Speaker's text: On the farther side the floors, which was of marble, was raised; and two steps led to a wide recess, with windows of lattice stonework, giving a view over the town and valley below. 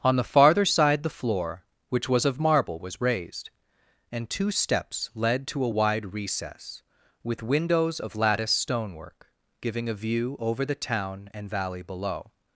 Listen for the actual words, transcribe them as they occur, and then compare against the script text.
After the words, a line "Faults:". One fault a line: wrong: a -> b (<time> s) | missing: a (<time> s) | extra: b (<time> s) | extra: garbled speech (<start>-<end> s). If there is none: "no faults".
On the farther side the floor, which was of marble, was raised; and two steps led to a wide recess, with windows of lattice stonework, giving a view over the town and valley below.
Faults:
wrong: floors -> floor (1.1 s)